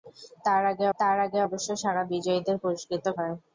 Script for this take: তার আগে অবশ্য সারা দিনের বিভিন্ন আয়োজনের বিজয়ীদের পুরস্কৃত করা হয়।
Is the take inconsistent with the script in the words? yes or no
yes